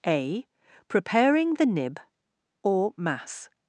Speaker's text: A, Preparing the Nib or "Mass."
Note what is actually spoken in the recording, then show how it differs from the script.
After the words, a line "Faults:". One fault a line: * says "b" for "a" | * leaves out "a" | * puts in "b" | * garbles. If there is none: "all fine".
A, Preparing the Nib or "Mass."
Faults:
all fine